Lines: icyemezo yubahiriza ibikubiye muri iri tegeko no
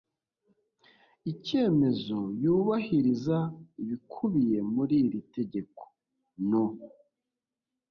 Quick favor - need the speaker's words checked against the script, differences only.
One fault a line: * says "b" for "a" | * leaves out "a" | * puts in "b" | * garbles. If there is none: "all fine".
all fine